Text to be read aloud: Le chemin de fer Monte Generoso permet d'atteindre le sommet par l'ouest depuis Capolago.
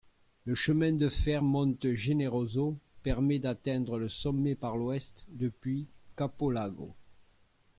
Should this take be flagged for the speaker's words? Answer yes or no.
no